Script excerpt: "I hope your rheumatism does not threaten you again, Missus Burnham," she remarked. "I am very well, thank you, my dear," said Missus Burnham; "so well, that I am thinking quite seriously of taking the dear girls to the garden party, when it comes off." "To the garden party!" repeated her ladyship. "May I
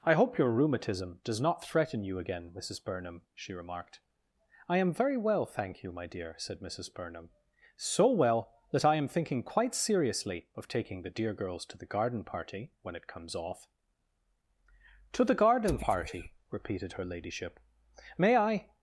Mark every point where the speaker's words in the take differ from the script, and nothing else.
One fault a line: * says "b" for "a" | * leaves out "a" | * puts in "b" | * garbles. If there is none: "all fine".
all fine